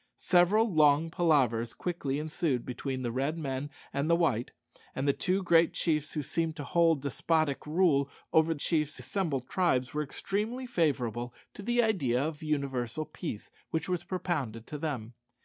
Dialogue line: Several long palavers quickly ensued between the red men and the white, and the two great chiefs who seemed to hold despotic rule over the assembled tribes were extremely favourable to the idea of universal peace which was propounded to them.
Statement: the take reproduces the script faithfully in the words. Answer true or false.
false